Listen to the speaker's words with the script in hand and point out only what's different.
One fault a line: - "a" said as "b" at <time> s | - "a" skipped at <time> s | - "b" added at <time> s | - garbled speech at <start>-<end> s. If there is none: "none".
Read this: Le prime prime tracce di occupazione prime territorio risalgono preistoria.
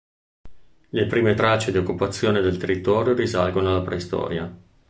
- "prime" skipped at 1.4 s
- "prime" said as "del" at 2.4 s
- "alla" added at 3.7 s